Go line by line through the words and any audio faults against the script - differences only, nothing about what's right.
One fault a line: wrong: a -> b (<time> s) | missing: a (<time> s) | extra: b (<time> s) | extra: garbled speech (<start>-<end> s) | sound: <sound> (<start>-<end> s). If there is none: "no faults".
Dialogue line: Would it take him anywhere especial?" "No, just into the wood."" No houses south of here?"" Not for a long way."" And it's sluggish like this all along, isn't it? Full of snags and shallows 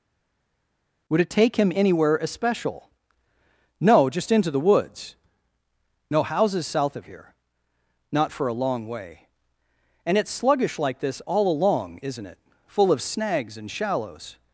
wrong: wood -> woods (4.6 s)